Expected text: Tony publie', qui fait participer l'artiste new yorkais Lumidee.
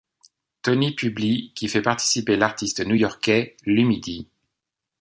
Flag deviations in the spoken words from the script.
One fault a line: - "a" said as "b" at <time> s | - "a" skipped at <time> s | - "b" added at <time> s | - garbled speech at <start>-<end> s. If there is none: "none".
none